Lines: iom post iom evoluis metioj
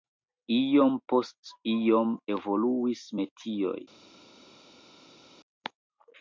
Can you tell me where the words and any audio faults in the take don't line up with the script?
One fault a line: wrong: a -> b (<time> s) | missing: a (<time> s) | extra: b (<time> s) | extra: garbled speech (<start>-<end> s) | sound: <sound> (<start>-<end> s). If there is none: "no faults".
no faults